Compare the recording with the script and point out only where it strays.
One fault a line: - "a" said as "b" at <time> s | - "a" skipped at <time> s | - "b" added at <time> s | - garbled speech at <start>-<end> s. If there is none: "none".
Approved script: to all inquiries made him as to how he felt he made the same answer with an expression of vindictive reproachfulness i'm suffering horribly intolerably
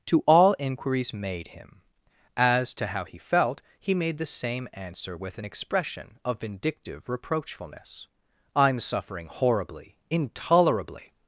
none